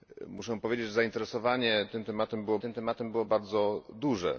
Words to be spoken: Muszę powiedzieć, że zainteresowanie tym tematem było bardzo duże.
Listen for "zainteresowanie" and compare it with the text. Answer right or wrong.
right